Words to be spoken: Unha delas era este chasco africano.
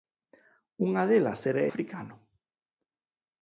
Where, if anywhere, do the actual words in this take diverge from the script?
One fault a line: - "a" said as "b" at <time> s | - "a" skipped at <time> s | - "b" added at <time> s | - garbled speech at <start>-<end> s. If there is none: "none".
- "este chasco" skipped at 1.6 s